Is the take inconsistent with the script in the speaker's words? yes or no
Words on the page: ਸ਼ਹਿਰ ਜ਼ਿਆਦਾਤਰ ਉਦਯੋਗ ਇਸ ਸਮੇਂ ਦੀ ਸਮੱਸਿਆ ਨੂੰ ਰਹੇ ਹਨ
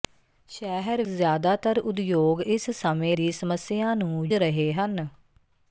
no